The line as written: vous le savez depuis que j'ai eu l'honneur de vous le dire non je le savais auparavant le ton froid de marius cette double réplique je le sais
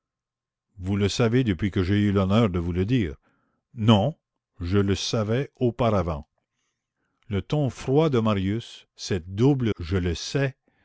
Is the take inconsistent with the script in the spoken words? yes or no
yes